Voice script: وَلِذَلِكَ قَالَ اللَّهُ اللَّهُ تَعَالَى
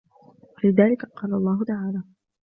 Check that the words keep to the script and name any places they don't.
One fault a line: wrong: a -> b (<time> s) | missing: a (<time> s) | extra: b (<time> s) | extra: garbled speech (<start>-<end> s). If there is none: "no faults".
missing: اللَّهُ (1.6 s)